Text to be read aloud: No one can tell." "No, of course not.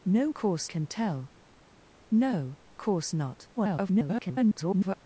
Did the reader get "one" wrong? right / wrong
wrong